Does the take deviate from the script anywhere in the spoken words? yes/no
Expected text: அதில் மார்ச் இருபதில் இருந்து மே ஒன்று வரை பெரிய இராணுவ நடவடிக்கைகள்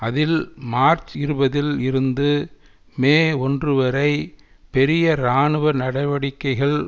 no